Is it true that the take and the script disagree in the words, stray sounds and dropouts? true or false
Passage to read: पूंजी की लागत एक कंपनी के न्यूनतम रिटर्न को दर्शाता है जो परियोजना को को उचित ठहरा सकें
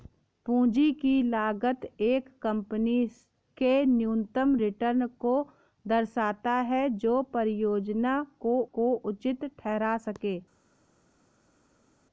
false